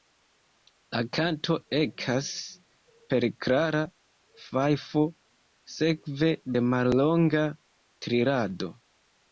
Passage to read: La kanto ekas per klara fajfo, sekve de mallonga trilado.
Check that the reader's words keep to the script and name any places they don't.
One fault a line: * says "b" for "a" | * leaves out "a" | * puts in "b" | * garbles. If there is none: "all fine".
all fine